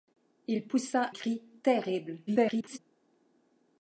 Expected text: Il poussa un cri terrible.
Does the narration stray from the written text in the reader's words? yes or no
yes